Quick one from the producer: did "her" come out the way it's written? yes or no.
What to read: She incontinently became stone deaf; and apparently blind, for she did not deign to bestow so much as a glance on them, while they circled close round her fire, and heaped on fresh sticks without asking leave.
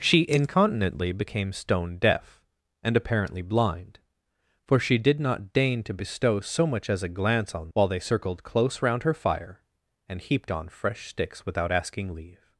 yes